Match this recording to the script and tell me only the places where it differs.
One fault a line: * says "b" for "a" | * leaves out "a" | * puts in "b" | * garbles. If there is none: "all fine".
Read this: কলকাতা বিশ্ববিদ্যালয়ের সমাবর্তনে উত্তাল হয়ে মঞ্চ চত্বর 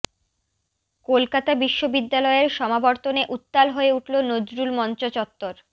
* puts in "উঠল নজরুল"